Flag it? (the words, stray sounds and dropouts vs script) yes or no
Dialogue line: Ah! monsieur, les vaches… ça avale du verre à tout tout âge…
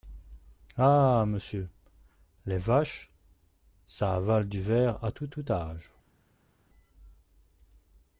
no